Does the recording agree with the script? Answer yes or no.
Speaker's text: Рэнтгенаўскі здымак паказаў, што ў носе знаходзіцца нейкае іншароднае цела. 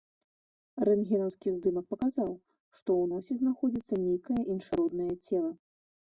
yes